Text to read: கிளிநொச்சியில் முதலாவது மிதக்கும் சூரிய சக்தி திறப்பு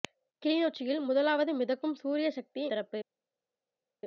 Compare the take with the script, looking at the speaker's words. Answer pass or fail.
pass